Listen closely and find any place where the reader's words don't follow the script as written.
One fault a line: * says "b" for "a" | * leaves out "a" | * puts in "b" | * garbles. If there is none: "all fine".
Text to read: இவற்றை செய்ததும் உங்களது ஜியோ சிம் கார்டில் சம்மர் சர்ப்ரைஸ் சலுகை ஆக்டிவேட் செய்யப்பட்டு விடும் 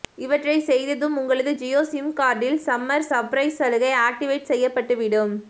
all fine